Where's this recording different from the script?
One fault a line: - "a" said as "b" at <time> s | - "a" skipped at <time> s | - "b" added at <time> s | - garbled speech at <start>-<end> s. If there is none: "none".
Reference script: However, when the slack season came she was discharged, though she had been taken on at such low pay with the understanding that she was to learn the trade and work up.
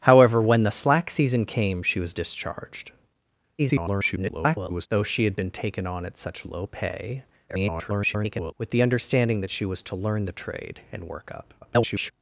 - garbled speech at 3.6-4.9 s
- garbled speech at 7.5-8.5 s
- garbled speech at 11.6-12.1 s